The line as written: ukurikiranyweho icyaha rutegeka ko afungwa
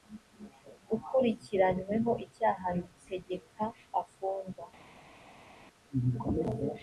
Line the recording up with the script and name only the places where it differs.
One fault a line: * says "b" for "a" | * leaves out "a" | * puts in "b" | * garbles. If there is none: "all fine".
* leaves out "ko"